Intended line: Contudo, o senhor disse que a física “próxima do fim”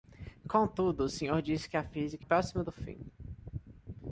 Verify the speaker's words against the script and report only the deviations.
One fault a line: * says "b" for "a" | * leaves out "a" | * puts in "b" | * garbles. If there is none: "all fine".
all fine